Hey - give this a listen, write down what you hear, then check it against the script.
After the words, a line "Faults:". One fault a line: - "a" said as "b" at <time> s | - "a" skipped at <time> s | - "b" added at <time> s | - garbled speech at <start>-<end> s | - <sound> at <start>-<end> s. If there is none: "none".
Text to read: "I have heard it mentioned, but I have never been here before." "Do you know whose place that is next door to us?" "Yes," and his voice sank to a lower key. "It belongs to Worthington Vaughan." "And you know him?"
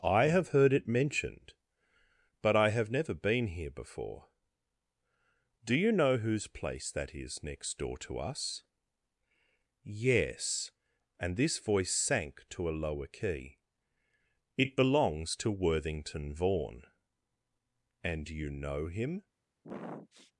"I have heard it mentioned, but I have never been here before." "Do you know whose place that is next door to us?" "Yes," and this voice sank to a lower key. "It belongs to Worthington Vaughan." "And you know him?"
Faults:
- "his" said as "this" at 11.4 s
- sniff at 19.6-20.3 s